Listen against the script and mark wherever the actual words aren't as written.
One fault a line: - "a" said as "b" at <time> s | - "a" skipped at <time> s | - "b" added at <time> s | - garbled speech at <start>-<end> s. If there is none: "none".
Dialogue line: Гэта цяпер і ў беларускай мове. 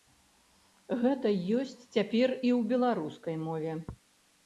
- "ёсць" added at 1.6 s